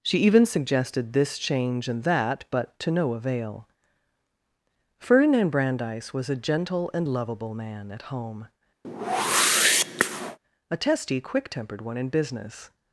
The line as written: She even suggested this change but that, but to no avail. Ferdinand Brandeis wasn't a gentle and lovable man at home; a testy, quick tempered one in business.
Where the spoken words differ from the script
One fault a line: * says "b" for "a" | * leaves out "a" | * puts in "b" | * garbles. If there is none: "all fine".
* says "and" for "but"
* says "was" for "wasn't"